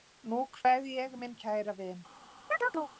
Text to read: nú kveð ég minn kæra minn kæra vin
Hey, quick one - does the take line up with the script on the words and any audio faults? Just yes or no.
no